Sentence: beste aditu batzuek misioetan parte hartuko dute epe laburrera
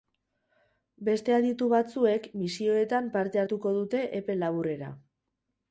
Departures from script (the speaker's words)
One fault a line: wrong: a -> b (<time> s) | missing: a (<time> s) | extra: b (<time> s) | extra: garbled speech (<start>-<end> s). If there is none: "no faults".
no faults